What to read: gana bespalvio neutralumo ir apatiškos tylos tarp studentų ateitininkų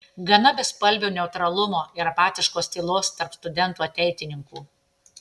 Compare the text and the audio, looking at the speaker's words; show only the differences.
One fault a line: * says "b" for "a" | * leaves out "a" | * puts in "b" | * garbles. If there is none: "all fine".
all fine